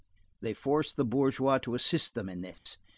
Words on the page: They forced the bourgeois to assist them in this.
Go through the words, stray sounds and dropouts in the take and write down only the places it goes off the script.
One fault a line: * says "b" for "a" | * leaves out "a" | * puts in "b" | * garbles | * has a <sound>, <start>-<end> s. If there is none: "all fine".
* has a dropout, 2.6-2.7 s